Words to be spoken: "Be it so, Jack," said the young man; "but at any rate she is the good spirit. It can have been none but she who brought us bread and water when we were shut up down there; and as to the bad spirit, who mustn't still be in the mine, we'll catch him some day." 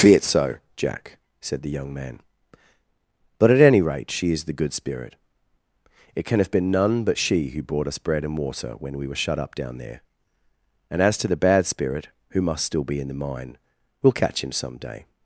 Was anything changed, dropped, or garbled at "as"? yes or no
no